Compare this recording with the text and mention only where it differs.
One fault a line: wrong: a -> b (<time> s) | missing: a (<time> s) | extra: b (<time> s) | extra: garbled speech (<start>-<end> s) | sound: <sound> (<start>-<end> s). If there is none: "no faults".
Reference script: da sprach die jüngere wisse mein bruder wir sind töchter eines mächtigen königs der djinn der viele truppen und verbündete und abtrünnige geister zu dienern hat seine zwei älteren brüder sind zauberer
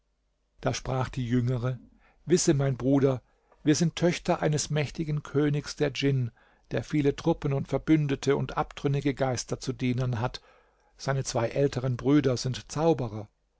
no faults